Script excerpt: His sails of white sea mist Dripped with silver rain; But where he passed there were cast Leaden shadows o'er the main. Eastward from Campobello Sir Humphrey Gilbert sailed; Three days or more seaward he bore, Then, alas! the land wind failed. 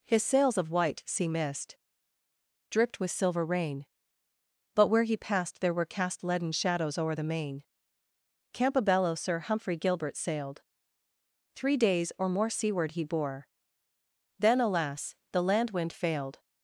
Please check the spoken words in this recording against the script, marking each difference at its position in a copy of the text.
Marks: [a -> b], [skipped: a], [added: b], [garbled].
His sails of white sea mist Dripped with silver rain; But where he passed there were cast Leaden shadows o'er the main. [skipped: Eastward from] Campobello Sir Humphrey Gilbert sailed; Three days or more seaward he bore, Then, alas! the land wind failed.